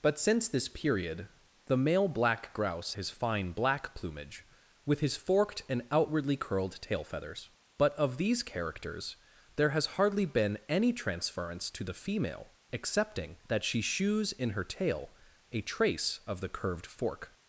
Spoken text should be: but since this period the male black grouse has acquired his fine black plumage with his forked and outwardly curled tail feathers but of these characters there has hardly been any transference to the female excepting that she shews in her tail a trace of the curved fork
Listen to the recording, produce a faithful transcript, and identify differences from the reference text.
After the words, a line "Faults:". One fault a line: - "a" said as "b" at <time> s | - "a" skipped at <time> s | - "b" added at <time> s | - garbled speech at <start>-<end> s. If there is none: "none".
but since this period the male black grouse his fine black plumage with his forked and outwardly curled tail feathers but of these characters there has hardly been any transference to the female excepting that she shews in her tail a trace of the curved fork
Faults:
- "has acquired" skipped at 3.0 s